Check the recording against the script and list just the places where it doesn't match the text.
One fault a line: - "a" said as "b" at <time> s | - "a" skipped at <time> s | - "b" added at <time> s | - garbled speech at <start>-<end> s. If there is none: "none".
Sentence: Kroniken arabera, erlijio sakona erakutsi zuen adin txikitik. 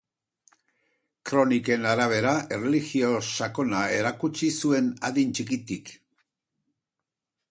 none